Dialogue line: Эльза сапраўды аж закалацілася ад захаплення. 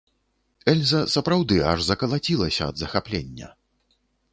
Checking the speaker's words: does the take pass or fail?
pass